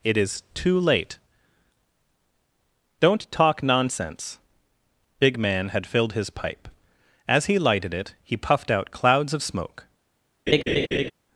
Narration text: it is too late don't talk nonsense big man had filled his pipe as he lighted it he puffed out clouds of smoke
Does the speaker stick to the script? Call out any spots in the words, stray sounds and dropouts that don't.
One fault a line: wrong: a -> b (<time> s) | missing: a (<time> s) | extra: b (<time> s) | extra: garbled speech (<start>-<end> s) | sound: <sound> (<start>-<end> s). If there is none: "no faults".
sound: laugh (10.5-11.1 s)